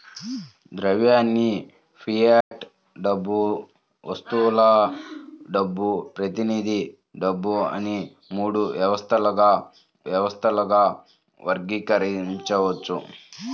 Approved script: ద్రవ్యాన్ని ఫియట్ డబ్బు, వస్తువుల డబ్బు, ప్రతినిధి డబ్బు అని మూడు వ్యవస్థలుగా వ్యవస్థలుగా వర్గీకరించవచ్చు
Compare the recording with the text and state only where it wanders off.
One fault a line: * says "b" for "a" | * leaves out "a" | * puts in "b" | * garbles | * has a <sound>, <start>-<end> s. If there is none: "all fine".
* has a dropout, 2.4-2.5 s